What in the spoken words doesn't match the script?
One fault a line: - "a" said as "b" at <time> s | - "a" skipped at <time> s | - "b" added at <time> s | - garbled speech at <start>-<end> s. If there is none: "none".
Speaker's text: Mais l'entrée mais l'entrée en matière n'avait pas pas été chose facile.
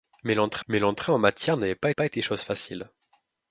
none